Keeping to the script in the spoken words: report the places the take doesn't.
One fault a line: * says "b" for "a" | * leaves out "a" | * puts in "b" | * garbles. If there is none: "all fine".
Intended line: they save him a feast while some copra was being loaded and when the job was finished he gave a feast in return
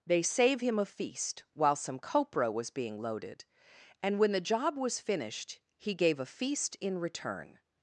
all fine